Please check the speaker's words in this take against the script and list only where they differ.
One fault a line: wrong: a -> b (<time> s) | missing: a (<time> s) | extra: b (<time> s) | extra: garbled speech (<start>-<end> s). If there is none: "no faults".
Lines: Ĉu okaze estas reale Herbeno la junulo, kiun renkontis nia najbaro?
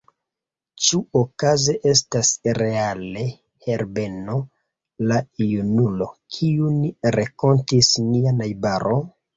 no faults